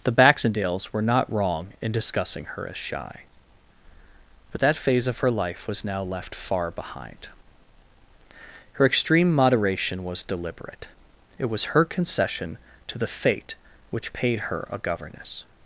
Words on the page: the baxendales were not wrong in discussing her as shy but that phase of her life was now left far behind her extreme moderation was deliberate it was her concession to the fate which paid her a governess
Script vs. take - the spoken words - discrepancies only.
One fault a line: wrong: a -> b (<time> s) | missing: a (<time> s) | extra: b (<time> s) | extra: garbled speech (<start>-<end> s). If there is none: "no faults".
no faults